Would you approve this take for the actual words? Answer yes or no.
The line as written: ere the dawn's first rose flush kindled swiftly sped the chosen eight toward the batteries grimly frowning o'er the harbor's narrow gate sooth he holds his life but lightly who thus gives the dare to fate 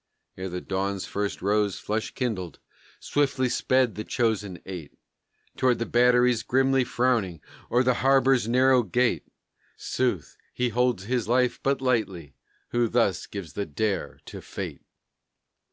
yes